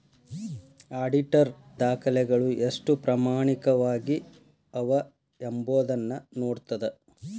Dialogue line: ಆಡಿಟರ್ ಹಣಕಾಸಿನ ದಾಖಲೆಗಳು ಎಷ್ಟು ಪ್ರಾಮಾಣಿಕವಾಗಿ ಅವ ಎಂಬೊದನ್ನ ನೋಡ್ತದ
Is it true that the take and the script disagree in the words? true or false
true